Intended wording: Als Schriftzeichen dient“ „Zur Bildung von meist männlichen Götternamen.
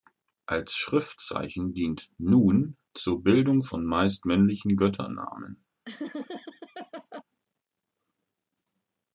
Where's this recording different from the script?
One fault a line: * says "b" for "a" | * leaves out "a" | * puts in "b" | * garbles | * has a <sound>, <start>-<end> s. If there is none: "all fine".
* puts in "Nun"
* has a laugh, 5.8-7.2 s